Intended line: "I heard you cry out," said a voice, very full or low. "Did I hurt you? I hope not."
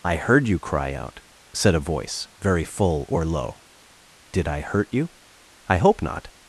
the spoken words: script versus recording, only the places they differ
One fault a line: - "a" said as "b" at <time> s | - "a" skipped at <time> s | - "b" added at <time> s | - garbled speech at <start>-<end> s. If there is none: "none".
none